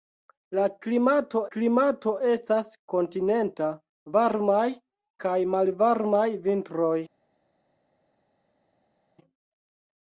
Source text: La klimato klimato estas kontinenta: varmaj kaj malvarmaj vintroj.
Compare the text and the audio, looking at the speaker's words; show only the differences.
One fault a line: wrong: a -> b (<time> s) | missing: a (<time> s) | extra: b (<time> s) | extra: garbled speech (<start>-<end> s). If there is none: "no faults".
no faults